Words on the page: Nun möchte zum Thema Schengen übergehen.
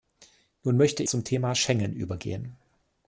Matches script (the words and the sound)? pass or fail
pass